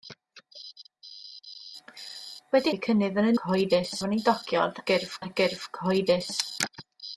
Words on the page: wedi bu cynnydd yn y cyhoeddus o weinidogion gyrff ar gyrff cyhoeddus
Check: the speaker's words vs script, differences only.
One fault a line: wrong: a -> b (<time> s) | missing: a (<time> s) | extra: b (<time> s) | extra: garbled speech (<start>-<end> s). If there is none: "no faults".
no faults